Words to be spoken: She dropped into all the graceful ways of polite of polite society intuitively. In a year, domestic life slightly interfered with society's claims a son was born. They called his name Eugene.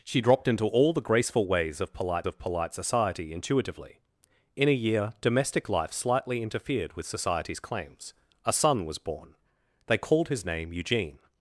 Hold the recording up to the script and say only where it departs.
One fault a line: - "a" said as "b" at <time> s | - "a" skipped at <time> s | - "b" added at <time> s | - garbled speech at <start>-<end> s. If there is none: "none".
none